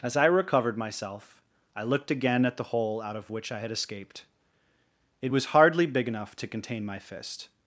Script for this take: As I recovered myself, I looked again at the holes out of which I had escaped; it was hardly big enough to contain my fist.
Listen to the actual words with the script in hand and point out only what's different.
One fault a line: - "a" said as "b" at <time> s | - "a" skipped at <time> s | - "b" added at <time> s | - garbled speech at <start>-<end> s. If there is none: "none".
- "holes" said as "hole" at 2.6 s